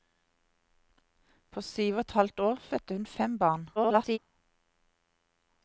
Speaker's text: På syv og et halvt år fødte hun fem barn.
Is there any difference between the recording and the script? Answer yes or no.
yes